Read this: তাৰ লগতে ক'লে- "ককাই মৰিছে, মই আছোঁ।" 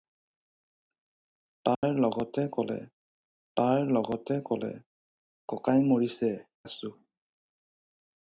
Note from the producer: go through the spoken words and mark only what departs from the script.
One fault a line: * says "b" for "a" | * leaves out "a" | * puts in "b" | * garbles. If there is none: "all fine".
* puts in "তাৰ লগতে ক'লে"
* leaves out "মই"